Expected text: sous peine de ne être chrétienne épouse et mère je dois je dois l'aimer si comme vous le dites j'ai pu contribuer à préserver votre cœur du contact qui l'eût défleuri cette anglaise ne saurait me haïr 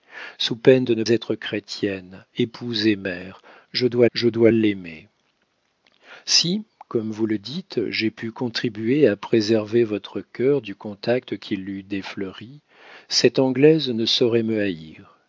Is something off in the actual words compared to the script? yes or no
no